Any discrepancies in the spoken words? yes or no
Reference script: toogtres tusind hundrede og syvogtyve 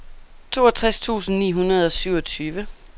yes